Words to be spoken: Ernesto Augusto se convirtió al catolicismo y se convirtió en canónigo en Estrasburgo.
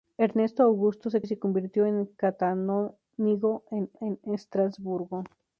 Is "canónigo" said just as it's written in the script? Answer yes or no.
yes